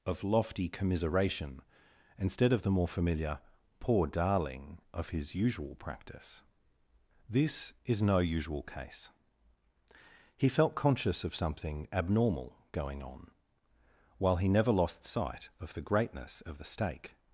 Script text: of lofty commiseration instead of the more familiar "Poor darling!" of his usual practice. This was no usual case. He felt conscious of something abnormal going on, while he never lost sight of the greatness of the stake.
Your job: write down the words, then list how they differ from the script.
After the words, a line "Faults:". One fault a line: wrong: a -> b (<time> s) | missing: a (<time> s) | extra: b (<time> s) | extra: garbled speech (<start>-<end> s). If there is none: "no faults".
of lofty commiseration instead of the more familiar "Poor darling!" of his usual practice. This is no usual case. He felt conscious of something abnormal going on, while he never lost sight of the greatness of the stake.
Faults:
wrong: was -> is (7.8 s)